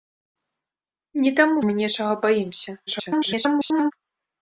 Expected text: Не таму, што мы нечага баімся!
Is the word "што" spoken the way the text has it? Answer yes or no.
no